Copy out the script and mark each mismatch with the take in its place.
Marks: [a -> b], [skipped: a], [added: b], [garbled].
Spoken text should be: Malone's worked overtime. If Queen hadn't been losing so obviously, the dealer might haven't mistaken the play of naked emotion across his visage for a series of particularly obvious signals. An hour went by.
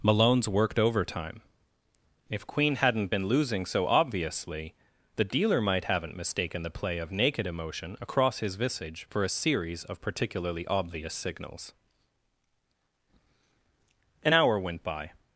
Malone's worked overtime. If Queen hadn't been losing so obviously, the dealer might haven't mistaken the play of naked emotion across his visage for a series of particularly obvious signals. An hour went by.